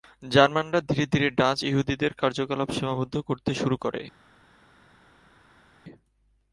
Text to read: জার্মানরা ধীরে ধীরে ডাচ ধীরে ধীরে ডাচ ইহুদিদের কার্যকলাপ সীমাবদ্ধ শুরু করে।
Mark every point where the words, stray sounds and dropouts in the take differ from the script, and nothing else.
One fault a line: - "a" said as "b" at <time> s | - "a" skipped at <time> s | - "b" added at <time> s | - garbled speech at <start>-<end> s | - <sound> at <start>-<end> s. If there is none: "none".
- "ধীরে ধীরে ডাচ" skipped at 1.6 s
- "করতে" added at 3.2 s